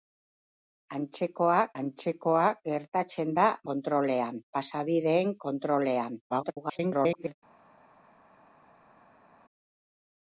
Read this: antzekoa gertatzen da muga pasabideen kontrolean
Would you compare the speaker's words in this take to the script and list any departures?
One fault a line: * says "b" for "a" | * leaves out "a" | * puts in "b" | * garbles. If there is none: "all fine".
* puts in "antzekoa"
* says "kontrolean" for "muga"
* garbles